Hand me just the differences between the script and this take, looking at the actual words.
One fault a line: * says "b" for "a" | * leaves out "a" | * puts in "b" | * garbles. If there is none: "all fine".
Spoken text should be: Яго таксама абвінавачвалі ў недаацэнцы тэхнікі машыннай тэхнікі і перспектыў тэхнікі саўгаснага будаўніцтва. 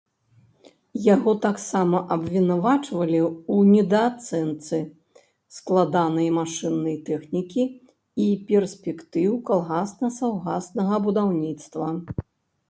* says "складанай" for "тэхнікі"
* says "калгасна" for "тэхнікі"